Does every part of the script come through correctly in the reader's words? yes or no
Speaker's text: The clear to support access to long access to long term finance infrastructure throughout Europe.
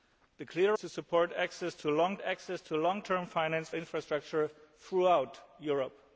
yes